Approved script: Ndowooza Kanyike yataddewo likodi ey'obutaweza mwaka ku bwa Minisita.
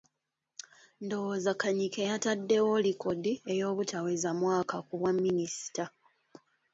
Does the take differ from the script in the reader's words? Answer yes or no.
no